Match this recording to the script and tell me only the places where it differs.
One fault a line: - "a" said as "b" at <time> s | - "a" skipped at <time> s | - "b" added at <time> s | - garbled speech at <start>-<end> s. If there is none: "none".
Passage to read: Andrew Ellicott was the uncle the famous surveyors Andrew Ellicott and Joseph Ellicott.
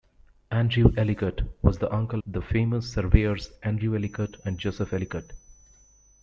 none